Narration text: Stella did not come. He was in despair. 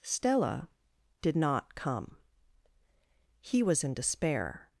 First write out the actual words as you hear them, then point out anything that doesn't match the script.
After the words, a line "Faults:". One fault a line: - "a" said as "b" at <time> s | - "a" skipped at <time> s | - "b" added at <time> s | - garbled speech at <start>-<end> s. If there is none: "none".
Stella did not come. He was in despair.
Faults:
none